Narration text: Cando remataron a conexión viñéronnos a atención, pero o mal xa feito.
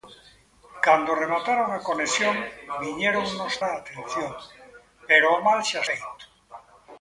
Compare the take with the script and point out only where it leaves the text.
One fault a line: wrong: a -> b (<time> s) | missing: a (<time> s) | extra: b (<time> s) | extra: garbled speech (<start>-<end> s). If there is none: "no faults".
no faults